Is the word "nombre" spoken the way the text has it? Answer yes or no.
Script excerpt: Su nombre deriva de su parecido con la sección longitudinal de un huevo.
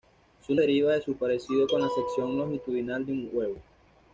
no